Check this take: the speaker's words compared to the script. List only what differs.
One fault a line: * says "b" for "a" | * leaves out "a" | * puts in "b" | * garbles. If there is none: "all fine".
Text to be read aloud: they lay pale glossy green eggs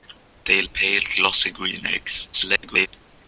* leaves out "lay"
* garbles